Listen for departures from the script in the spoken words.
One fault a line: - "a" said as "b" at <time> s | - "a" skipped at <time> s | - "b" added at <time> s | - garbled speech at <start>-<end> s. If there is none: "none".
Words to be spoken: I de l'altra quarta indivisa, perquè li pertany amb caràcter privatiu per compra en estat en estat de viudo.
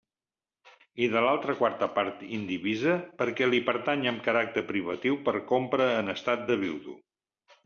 - "part" added at 2.0 s
- "en estat" skipped at 6.5 s